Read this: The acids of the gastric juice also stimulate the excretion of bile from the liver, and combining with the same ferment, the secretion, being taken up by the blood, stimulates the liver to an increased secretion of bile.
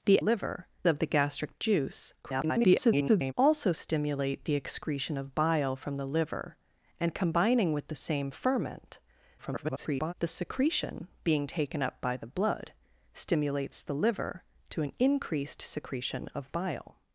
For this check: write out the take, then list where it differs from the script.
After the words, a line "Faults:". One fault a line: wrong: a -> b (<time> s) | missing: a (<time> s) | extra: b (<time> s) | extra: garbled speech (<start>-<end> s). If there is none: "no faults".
The liver of the gastric juice [garbled] also stimulate the excretion of bile from the liver, and combining with the same ferment, [garbled] the secretion, being taken up by the blood, stimulates the liver to an increased secretion of bile.
Faults:
wrong: acids -> liver (0.2 s)
extra: garbled speech (2.2-3.3 s)
extra: garbled speech (9.4-10.1 s)